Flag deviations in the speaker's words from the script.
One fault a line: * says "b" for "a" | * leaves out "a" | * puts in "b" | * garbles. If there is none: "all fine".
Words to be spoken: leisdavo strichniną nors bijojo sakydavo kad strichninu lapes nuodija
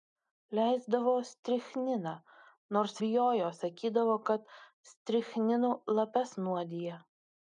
all fine